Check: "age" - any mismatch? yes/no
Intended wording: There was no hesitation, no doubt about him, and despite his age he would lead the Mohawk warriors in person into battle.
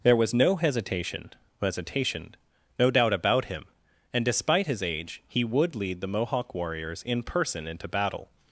no